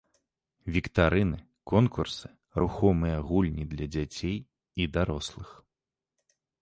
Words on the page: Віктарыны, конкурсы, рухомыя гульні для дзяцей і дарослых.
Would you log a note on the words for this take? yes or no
no